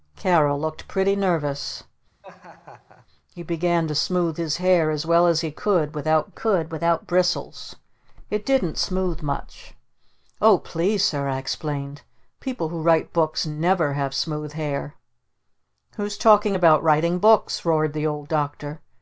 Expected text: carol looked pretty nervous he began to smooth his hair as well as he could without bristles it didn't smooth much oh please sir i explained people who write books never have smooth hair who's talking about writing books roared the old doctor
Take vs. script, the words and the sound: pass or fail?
fail